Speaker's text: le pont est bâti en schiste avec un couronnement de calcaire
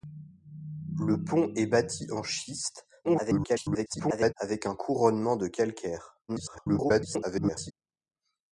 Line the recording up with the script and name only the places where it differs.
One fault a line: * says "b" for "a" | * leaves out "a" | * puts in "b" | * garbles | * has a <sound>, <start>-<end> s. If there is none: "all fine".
* garbles
* garbles